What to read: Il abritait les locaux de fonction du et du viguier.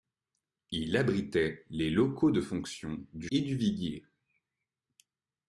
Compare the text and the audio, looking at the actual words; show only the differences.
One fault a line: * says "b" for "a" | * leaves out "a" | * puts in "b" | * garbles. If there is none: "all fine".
all fine